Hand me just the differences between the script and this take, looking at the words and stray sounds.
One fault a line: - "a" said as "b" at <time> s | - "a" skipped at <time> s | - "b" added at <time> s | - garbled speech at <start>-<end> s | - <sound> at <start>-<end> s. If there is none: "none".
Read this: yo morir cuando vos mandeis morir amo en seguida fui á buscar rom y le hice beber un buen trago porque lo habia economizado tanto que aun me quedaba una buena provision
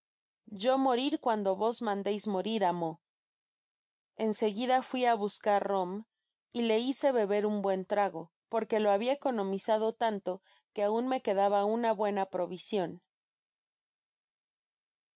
none